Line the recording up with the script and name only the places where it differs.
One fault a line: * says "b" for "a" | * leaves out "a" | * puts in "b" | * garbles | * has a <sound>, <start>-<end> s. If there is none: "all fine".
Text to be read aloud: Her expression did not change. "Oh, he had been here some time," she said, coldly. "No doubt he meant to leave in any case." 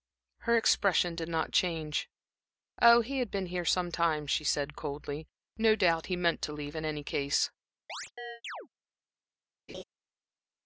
* has a chirp, 7.9-8.7 s
* has a laugh, 9.7-9.8 s